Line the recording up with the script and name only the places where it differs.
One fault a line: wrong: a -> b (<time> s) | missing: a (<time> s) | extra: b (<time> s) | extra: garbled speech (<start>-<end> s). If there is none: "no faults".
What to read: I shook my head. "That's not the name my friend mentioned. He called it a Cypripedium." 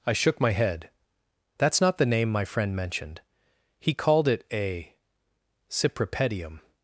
no faults